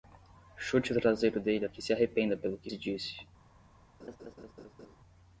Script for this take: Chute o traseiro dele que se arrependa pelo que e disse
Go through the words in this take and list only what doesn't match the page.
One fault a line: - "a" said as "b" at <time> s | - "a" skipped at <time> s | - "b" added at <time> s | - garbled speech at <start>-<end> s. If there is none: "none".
none